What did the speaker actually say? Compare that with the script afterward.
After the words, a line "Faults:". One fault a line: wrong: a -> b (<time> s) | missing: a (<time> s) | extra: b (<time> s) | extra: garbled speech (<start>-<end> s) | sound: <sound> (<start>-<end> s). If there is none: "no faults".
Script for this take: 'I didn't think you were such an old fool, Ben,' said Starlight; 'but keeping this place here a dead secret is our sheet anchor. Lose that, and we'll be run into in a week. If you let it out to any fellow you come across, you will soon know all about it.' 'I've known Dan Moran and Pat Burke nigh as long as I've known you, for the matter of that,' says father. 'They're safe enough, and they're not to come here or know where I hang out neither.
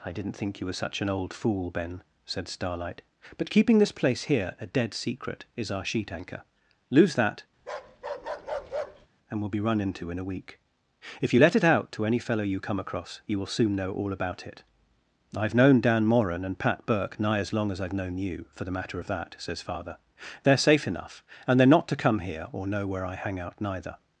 'I didn't think you were such an old fool, Ben,' said Starlight; 'but keeping this place here a dead secret is our sheet anchor. Lose that, and we'll be run into in a week. If you let it out to any fellow you come across, you will soon know all about it.' 'I've known Dan Moran and Pat Burke nigh as long as I've known you, for the matter of that,' says father. 'They're safe enough, and they're not to come here or know where I hang out neither.
Faults:
sound: bark (7.6-9.1 s)